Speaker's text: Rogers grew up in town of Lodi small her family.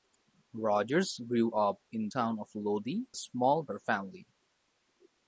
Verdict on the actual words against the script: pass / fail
pass